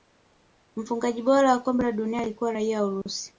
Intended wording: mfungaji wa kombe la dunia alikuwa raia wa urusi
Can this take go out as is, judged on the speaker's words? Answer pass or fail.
fail